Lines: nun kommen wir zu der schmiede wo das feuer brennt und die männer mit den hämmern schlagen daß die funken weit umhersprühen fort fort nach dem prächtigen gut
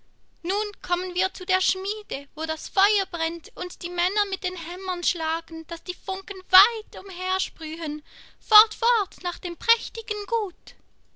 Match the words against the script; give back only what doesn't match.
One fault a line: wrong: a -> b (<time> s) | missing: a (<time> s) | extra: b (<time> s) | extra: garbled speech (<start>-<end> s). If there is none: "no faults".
no faults